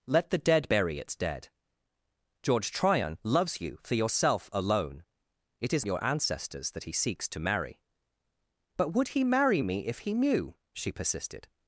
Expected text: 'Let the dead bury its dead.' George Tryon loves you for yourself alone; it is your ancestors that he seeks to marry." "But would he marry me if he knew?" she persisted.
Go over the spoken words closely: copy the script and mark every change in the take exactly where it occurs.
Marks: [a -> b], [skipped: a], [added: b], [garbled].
'Let the dead bury its dead.' George Tryon loves you for yourself alone; it is your ancestors that he seeks to marry." "But would he marry me if he knew?" she persisted.